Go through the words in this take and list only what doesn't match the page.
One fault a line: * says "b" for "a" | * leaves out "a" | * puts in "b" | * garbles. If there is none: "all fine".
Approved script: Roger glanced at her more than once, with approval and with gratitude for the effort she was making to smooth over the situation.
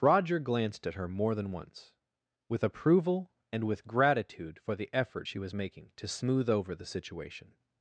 all fine